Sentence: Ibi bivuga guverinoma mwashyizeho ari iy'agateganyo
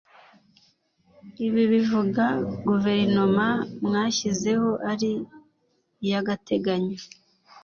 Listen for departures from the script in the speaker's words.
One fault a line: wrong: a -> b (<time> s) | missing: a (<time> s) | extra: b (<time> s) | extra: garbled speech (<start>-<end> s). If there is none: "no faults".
no faults